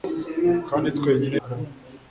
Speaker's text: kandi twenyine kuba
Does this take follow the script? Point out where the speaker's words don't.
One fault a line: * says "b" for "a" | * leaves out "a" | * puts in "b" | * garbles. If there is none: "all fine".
all fine